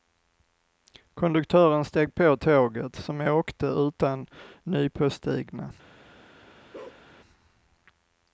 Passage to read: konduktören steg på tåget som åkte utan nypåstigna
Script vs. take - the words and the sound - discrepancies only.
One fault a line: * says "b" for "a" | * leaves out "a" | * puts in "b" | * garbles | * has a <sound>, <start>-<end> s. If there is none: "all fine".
* has a bark, 6.7-7.0 s